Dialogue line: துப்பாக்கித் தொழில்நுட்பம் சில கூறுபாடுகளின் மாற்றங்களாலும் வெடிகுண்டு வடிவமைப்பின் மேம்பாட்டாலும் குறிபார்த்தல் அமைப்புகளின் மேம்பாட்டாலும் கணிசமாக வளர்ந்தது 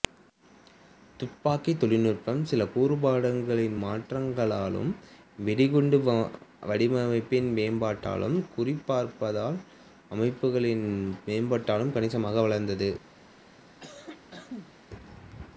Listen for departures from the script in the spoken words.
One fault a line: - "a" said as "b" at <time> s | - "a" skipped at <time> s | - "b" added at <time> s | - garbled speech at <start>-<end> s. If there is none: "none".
none